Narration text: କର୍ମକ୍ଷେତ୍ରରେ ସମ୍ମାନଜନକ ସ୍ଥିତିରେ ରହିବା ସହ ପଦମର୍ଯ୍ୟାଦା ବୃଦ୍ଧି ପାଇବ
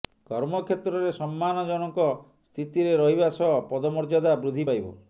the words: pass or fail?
pass